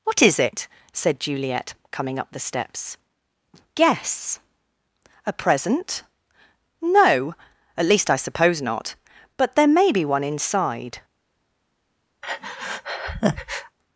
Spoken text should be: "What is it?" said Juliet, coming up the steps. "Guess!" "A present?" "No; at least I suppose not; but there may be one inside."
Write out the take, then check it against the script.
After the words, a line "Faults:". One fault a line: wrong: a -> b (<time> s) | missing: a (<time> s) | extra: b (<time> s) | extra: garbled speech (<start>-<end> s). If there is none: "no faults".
"What is it?" said Juliet, coming up the steps. "Guess!" "A present?" "No; at least I suppose not; but there may be one inside."
Faults:
no faults